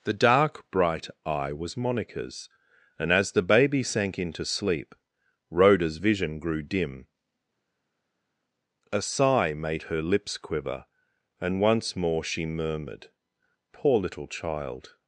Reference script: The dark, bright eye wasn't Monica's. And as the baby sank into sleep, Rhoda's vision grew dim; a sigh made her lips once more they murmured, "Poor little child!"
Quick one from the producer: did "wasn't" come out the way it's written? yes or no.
no